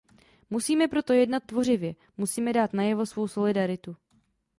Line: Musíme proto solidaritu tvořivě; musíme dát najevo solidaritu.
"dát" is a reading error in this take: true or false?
false